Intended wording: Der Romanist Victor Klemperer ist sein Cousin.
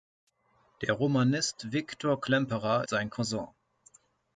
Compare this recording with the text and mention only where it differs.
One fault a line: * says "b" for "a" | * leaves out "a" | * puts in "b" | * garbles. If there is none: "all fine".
* leaves out "ist"